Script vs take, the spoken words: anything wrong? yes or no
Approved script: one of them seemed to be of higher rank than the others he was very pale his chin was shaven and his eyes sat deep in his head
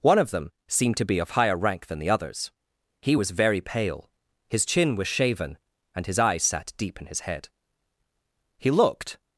yes